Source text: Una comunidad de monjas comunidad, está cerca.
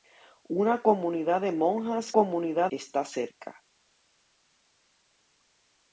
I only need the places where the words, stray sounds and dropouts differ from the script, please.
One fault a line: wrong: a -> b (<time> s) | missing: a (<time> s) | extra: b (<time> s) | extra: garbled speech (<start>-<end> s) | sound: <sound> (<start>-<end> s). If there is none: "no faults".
no faults